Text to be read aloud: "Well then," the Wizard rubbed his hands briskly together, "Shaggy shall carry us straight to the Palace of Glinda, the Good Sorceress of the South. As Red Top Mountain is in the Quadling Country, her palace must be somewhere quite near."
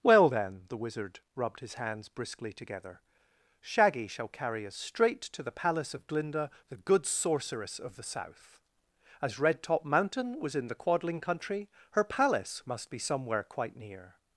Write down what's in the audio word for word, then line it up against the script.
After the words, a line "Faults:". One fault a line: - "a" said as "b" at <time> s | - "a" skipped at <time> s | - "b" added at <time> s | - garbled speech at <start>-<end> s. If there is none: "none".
"Well then," the Wizard rubbed his hands briskly together, "Shaggy shall carry us straight to the Palace of Glinda, the Good Sorceress of the South. As Red Top Mountain was in the Quadling Country, her palace must be somewhere quite near."
Faults:
- "is" said as "was" at 10.4 s